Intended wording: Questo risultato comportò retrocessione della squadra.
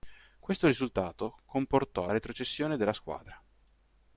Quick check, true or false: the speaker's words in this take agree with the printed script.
true